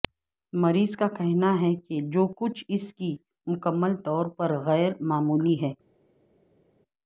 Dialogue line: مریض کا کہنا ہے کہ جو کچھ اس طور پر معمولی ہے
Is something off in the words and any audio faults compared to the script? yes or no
yes